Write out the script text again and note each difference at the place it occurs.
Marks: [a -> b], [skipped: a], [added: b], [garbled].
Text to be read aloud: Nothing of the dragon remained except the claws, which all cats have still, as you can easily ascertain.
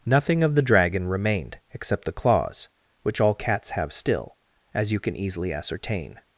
Nothing of the dragon remained except the claws, which all cats have still, as you can easily ascertain.